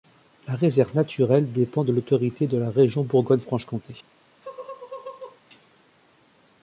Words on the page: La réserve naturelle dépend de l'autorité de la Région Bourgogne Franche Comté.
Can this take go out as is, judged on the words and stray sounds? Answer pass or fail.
fail